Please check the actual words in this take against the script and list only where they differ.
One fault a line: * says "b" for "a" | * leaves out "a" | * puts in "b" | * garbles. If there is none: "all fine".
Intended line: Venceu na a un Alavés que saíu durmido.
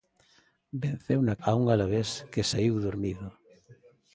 all fine